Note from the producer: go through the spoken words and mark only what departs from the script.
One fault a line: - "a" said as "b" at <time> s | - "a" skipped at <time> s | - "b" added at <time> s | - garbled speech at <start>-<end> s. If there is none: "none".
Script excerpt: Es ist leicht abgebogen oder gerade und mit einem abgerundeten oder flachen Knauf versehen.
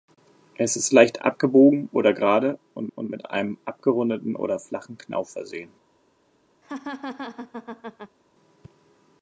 - "und" added at 2.9 s